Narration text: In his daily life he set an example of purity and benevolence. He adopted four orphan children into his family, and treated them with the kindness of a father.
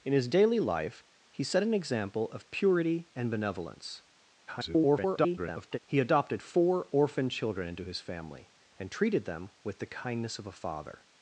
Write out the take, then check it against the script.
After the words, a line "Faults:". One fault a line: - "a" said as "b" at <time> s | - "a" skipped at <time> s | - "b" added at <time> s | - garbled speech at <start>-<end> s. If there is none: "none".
In his daily life he set an example of purity and benevolence. [garbled] He adopted four orphan children into his family, and treated them with the kindness of a father.
Faults:
- garbled speech at 4.5-5.8 s